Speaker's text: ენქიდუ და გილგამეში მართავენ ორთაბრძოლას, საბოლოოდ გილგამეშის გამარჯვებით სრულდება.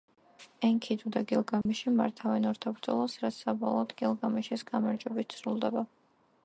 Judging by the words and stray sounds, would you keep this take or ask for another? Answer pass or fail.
fail